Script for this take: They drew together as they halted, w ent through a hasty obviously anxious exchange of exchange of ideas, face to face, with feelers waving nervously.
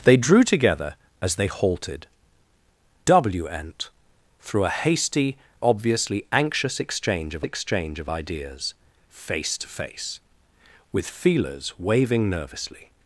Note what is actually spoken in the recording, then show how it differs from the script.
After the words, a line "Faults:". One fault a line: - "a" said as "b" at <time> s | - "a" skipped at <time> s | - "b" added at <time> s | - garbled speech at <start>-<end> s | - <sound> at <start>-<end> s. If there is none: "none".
They drew together as they halted, w ent through a hasty obviously anxious exchange of exchange of ideas, face to face, with feelers waving nervously.
Faults:
none